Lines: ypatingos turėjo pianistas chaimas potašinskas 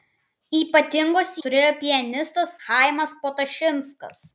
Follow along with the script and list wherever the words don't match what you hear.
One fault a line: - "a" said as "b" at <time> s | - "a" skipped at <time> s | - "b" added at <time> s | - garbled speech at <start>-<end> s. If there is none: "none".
none